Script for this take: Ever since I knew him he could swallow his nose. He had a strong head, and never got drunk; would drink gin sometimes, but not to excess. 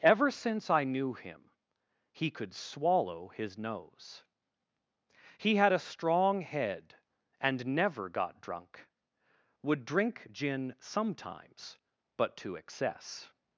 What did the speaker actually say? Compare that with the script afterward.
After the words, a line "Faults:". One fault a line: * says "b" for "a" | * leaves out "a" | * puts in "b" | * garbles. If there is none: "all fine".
Ever since I knew him he could swallow his nose. He had a strong head, and never got drunk; would drink gin sometimes, but to excess.
Faults:
* leaves out "not"